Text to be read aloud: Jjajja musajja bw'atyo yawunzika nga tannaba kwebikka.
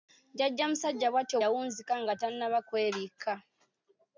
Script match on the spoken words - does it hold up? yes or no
yes